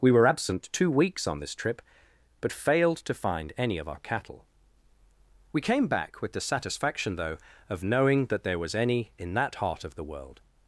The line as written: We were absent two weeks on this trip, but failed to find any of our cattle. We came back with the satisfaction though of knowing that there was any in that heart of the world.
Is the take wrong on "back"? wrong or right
right